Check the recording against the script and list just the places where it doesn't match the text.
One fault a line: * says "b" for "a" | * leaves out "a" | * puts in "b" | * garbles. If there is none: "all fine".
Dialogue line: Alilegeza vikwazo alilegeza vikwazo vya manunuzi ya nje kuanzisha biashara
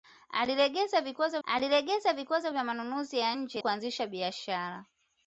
all fine